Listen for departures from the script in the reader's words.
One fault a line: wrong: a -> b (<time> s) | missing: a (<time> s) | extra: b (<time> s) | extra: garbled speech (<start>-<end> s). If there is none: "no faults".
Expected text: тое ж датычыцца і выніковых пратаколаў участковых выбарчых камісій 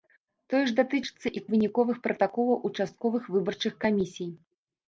no faults